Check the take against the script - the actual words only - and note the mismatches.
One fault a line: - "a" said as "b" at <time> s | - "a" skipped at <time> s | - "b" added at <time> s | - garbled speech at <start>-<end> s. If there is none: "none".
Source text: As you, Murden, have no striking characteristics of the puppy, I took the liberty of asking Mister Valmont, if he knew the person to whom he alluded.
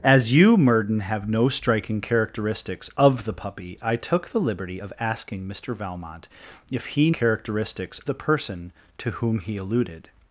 - "knew" said as "characteristics" at 7.1 s